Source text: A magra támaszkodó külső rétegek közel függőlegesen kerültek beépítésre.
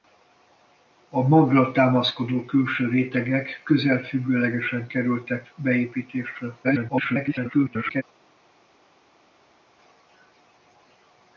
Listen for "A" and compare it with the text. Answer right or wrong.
right